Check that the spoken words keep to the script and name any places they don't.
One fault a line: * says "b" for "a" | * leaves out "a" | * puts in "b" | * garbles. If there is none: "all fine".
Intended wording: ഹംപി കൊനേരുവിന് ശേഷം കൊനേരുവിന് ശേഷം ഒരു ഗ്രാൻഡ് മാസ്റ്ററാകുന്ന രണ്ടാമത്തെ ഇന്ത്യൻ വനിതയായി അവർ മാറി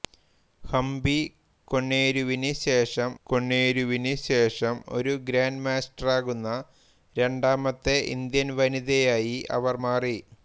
all fine